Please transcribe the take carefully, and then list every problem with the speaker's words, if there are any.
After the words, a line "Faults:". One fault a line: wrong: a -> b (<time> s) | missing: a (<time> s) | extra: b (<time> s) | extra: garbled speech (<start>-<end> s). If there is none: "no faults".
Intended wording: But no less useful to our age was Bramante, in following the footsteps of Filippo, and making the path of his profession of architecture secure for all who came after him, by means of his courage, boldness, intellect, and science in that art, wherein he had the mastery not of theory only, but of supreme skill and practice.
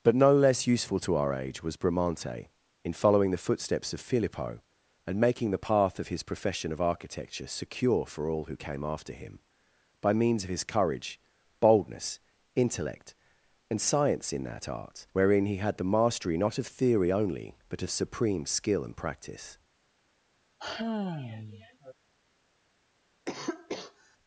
But no less useful to our age was Bramante, in following the footsteps of Filippo, and making the path of his profession of architecture secure for all who came after him, by means of his courage, boldness, intellect, and science in that art, wherein he had the mastery not of theory only, but of supreme skill and practice.
Faults:
no faults